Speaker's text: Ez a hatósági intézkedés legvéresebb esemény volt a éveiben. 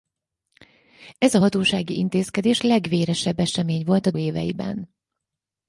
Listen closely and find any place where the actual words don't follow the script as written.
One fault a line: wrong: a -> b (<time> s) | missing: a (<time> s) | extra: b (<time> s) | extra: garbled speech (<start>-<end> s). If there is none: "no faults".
no faults